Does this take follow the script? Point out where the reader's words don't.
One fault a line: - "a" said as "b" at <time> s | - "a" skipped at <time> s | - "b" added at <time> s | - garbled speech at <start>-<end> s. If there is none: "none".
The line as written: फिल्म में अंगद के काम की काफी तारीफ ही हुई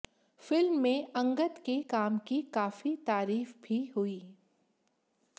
- "ही" said as "भी" at 3.6 s